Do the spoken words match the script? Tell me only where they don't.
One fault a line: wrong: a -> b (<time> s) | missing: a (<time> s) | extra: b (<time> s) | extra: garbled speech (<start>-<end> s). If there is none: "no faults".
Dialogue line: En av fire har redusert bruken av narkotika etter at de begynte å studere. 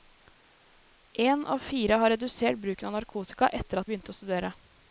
missing: de (3.9 s)